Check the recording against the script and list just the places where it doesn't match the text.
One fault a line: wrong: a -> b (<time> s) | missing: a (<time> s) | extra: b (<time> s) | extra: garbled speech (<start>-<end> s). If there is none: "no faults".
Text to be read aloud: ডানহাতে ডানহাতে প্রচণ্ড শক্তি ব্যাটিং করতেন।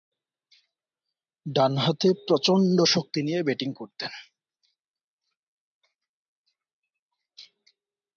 missing: ডানহাতে (2.1 s)
extra: নিয়ে (3.2 s)